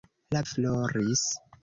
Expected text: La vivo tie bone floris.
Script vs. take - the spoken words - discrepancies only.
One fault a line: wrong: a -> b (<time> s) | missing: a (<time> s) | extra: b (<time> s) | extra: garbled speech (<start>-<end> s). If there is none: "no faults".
missing: vivo tie bone (0.4 s)